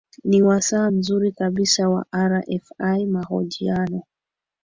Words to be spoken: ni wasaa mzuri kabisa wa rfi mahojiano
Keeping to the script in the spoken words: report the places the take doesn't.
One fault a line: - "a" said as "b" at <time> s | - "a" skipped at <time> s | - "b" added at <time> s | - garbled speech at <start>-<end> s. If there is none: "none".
none